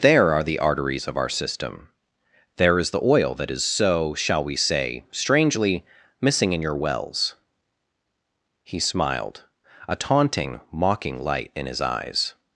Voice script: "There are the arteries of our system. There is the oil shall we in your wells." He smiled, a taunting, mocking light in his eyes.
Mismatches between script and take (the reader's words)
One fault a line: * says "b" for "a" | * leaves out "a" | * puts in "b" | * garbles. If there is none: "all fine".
* puts in "that is so"
* puts in "say strangely missing"